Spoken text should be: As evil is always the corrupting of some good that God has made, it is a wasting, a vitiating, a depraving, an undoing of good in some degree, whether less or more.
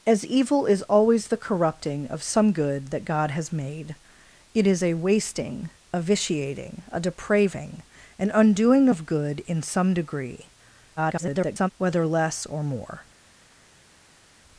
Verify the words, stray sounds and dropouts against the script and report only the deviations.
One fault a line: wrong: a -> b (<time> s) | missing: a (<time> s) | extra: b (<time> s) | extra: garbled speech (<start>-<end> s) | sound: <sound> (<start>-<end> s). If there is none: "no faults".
extra: garbled speech (11.0-11.7 s)